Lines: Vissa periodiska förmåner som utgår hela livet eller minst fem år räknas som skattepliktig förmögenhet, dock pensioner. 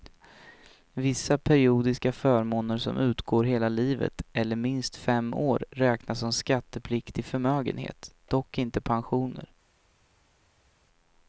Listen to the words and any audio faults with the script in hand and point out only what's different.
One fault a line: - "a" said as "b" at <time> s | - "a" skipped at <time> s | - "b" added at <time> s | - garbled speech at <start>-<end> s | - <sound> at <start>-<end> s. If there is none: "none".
- "inte" added at 8.6 s